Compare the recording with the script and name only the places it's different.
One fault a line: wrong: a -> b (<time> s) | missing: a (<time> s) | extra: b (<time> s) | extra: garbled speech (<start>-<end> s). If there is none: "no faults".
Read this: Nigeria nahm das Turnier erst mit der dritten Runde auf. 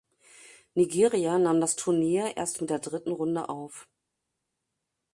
no faults